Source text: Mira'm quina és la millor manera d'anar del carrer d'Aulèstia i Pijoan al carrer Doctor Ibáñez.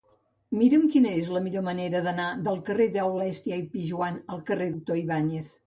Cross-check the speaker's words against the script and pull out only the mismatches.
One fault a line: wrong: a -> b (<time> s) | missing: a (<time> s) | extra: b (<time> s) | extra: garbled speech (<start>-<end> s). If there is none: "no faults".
no faults